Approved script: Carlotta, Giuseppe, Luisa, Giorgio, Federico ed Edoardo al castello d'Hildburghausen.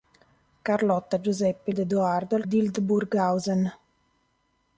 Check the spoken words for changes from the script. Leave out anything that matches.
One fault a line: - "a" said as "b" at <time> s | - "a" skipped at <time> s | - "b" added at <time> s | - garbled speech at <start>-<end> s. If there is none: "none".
- "Luisa Giorgio Federico" skipped at 1.7 s
- "castello" skipped at 2.4 s